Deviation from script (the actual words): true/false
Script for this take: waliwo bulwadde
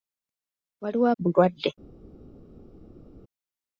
false